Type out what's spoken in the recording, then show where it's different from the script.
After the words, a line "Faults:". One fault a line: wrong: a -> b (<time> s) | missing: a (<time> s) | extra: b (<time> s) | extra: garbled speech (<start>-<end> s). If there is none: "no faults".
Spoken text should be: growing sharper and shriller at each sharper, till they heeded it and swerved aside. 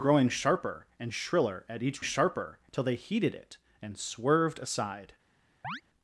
growing sharper and shriller at each sharper, till they heeded it and swerved aside.
Faults:
no faults